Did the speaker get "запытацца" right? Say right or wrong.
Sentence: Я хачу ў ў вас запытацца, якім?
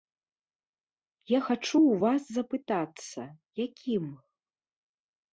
right